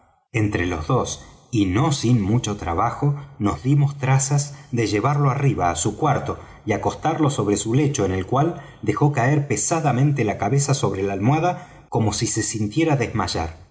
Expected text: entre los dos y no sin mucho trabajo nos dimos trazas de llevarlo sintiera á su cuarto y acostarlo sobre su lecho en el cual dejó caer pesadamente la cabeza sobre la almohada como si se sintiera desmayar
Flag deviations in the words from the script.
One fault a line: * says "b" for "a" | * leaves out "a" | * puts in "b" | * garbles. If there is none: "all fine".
* says "arriba" for "sintiera"